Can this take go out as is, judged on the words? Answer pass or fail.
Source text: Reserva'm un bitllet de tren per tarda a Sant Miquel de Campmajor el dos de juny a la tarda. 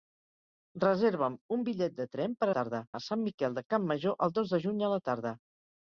pass